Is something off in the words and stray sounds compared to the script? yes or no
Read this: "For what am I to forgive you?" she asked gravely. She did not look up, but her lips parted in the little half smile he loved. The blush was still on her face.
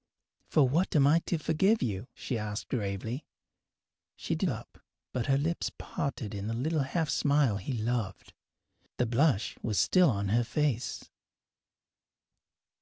yes